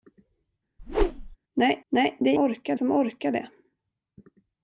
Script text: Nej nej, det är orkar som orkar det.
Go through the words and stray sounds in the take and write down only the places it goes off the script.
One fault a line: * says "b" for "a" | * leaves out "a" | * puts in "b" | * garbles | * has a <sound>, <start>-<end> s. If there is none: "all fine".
* has a whoosh, 0.8-1.4 s